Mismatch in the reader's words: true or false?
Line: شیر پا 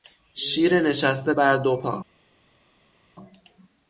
true